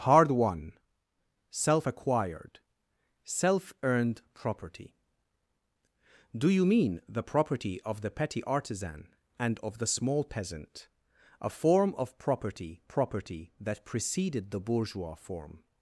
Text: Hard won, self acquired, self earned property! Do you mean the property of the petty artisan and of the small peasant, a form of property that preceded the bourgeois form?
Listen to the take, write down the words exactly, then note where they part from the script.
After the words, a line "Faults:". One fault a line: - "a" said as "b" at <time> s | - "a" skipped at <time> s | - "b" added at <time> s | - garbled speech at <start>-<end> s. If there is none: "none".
Hard won, self acquired, self earned property! Do you mean the property of the petty artisan and of the small peasant, a form of property property that preceded the bourgeois form?
Faults:
- "property" added at 12.9 s